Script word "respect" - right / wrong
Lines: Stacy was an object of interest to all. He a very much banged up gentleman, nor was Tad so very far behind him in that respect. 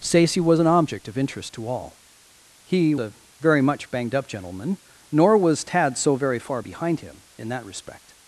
right